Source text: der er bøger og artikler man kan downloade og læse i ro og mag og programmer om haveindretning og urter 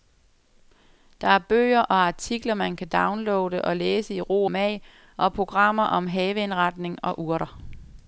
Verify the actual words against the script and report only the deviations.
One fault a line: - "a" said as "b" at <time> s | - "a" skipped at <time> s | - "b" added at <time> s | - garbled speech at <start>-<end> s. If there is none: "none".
- "og" skipped at 4.5 s